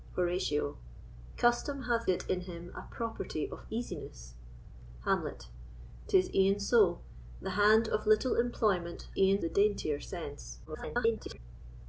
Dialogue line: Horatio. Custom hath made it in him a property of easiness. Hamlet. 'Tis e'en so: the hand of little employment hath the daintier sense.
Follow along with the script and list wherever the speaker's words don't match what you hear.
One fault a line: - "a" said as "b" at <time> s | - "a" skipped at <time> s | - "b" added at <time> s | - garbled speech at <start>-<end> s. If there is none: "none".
- "made" skipped at 2.1 s
- "hath" said as "e'en" at 9.2 s
- garbled speech at 10.6-11.4 s